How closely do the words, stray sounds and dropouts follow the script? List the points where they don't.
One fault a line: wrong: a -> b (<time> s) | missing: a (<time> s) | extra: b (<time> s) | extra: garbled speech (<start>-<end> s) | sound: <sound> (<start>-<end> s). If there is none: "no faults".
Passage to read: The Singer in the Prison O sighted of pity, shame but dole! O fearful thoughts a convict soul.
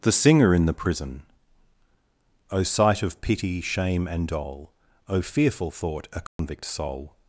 wrong: sighted -> sight (2.6 s)
wrong: but -> and (4.1 s)
wrong: thoughts -> thought (5.7 s)
sound: dropout (6.3-6.4 s)